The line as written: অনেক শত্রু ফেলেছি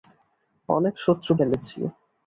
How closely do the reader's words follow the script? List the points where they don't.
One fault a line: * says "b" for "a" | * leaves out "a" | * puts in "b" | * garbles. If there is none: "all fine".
all fine